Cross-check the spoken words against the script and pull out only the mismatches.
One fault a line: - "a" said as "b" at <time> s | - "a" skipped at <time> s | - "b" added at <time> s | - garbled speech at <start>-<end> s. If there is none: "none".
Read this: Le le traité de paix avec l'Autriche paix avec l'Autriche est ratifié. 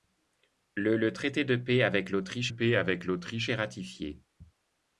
none